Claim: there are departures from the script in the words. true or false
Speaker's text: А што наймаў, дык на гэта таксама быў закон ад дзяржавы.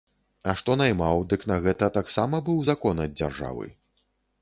false